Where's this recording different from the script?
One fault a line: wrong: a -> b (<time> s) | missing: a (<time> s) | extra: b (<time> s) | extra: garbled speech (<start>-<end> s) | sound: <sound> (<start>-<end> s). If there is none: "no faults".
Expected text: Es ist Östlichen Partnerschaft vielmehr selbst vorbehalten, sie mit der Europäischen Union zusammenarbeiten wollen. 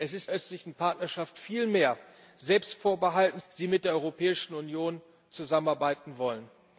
no faults